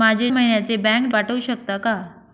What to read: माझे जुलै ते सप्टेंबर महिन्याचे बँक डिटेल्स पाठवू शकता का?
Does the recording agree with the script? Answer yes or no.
no